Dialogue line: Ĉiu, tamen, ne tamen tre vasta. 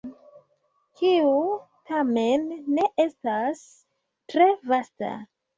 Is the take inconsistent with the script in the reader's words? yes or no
yes